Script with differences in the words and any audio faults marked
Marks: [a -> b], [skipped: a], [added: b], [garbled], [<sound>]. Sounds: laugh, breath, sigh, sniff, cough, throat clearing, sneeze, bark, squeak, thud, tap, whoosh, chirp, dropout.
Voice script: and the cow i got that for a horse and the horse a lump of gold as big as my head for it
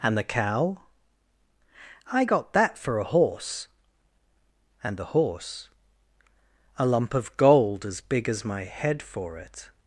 and the cow i got that for a horse and the horse a lump of gold as big as my head for it